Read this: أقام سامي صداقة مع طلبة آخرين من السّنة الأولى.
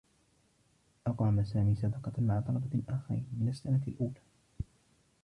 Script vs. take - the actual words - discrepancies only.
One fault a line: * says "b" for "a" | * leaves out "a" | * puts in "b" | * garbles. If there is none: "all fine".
all fine